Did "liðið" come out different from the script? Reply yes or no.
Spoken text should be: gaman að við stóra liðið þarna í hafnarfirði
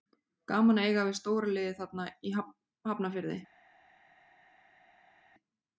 no